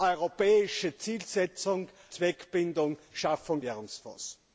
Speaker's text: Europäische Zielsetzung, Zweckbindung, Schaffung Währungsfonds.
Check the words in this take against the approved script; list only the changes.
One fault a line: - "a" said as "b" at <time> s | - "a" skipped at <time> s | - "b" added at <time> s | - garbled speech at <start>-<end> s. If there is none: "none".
none